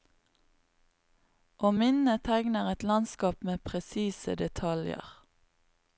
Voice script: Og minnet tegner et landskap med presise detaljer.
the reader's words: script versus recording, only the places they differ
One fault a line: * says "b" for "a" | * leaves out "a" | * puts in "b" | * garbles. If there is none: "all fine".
all fine